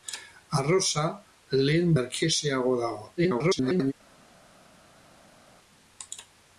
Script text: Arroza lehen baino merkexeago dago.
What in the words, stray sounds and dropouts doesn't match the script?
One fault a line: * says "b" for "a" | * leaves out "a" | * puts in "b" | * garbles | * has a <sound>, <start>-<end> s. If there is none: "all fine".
* leaves out "baino"
* garbles